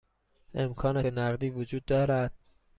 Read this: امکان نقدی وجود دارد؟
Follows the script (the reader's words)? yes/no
yes